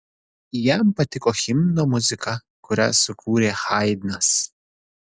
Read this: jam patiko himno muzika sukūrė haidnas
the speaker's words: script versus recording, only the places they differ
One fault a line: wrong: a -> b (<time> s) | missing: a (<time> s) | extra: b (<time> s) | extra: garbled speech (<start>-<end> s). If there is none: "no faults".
extra: kurią (2.7 s)